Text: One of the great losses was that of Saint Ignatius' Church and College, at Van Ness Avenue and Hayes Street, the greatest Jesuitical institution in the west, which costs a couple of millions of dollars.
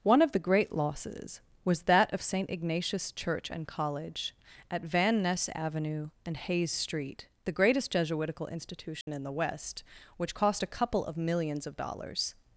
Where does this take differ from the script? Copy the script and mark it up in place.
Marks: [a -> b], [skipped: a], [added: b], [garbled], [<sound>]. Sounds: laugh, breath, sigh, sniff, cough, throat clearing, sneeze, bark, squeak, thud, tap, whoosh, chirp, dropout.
One of the great losses was that of Saint Ignatius' Church and College, at Van Ness Avenue and Hayes Street, the greatest Jesuitical institution [dropout] in the west, which [costs -> cost] a couple of millions of dollars.